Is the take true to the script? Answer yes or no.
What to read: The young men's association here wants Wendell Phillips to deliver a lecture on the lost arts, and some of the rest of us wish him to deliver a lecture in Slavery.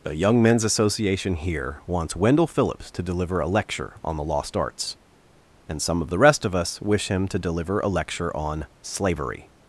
no